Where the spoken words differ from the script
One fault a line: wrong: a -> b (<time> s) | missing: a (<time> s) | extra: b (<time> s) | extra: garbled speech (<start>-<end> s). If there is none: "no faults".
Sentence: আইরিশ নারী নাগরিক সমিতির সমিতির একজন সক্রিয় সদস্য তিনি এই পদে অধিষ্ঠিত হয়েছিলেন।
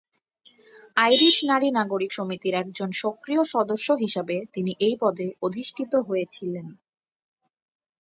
missing: সমিতির (2.5 s)
extra: হিসাবে (4.0 s)